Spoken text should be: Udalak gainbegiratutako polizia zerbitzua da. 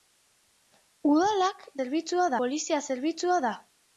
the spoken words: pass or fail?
fail